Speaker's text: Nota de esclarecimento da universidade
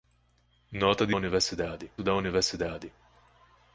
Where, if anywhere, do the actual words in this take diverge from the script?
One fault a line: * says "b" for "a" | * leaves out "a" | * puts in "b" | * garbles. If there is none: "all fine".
* says "universidade" for "esclarecimento"